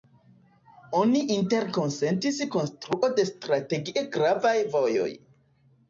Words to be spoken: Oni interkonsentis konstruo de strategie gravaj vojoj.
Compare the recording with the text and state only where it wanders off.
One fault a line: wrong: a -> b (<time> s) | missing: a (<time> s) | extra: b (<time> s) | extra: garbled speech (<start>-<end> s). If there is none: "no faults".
no faults